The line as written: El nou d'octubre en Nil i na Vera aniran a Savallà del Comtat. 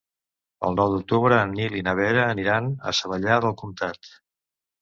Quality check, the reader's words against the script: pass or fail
pass